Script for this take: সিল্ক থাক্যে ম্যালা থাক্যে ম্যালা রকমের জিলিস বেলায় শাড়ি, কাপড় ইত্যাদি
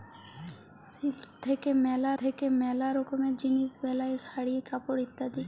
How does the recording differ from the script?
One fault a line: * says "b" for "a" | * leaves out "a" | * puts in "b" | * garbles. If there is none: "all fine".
all fine